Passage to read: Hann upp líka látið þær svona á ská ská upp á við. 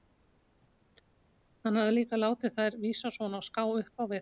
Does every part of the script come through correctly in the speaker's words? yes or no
no